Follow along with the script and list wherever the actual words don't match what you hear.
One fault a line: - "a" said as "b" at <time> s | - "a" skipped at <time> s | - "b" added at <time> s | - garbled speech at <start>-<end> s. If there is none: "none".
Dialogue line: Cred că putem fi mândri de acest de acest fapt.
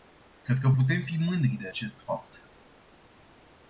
- "de acest" skipped at 2.0 s